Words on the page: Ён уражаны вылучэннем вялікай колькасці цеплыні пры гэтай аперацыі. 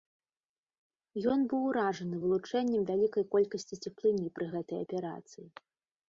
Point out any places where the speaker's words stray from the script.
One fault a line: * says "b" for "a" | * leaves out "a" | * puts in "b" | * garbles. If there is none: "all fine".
* puts in "быў"